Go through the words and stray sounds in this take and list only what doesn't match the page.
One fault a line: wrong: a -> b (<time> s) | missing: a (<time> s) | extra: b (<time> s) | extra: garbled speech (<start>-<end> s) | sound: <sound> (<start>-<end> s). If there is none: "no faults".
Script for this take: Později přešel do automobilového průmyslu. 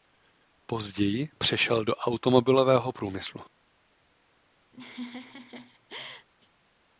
sound: laugh (4.7-6.3 s)